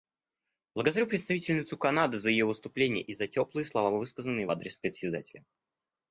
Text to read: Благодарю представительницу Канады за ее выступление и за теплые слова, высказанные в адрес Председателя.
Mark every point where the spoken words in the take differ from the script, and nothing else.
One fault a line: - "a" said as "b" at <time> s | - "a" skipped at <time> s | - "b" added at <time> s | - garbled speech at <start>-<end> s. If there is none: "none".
none